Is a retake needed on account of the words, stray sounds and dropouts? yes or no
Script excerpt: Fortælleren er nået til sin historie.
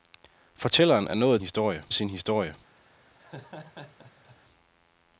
yes